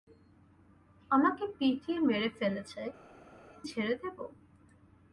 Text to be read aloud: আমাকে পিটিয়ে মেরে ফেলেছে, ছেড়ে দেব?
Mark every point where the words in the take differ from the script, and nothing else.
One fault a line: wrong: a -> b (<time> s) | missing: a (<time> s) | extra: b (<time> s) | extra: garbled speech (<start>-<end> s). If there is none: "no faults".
no faults